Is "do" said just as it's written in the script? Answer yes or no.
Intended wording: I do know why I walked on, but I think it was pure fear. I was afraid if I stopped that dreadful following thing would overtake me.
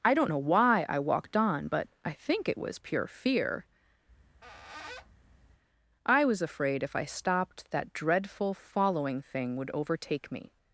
no